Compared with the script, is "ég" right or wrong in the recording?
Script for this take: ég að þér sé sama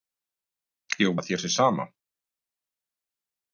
right